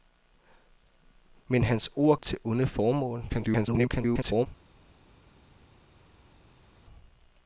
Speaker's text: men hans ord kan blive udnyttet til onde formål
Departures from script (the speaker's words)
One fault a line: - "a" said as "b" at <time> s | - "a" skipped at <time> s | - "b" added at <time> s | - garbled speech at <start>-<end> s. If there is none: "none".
- "kan blive udnyttet" skipped at 2.2 s
- garbled speech at 3.3-4.5 s